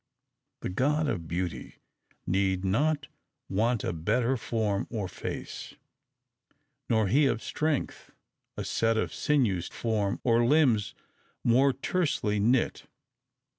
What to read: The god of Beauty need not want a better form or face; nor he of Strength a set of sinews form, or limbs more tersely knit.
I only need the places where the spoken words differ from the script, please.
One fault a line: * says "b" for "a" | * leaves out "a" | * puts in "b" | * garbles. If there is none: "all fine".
all fine